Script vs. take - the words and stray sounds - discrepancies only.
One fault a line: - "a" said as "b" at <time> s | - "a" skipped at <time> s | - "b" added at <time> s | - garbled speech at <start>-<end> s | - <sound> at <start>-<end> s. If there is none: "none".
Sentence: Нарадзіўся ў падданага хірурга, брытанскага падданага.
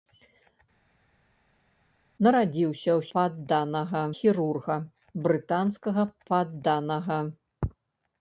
none